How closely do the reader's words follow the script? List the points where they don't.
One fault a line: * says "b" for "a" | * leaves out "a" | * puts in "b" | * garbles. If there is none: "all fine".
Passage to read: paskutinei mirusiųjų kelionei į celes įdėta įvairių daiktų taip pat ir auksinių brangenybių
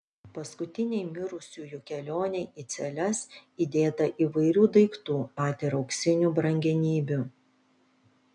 * leaves out "taip"